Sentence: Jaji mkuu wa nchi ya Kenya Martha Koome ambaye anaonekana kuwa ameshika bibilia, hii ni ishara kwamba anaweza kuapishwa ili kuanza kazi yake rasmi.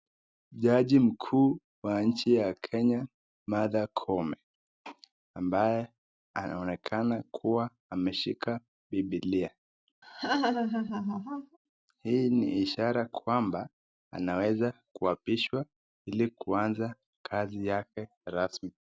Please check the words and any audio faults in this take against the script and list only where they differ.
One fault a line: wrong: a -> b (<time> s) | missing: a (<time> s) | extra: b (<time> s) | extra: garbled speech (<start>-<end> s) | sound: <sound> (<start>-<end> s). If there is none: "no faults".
sound: laugh (10.0-11.6 s)